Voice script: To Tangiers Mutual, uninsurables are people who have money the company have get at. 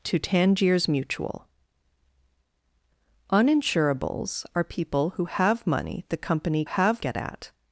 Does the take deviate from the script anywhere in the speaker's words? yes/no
no